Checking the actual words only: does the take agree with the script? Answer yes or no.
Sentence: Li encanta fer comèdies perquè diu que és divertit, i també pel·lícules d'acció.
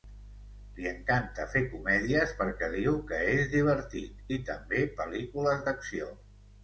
yes